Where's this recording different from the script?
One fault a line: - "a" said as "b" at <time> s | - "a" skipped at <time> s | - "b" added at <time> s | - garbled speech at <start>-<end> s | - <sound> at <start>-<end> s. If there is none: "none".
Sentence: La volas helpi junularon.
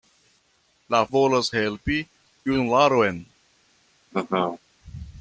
- laugh at 4.1-4.6 s